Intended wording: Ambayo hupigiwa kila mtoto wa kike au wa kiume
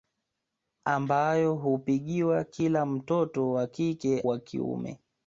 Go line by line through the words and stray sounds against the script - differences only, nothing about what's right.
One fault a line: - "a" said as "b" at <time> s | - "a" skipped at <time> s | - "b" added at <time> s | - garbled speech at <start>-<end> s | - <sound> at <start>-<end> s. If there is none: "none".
- "au" skipped at 4.2 s